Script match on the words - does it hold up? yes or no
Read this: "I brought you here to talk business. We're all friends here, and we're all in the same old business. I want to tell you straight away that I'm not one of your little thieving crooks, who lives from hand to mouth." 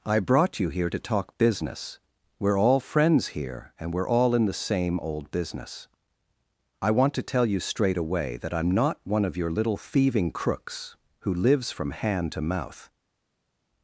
yes